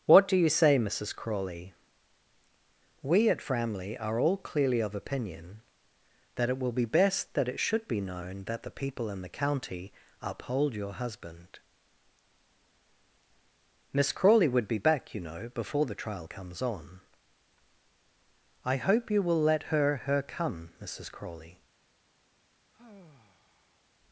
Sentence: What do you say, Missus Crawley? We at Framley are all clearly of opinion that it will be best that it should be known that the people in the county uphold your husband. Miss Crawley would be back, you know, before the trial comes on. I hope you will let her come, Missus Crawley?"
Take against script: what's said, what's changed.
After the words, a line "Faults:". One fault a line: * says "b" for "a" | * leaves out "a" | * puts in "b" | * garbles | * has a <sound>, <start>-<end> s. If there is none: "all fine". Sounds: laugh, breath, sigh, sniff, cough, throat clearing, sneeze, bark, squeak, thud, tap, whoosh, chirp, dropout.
What do you say, Missus Crawley? We at Framley are all clearly of opinion that it will be best that it should be known that the people in the county uphold your husband. Miss Crawley would be back, you know, before the trial comes on. I hope you will let her her come, Missus Crawley?"
Faults:
* puts in "her"
* has a sigh, 22.7-23.8 s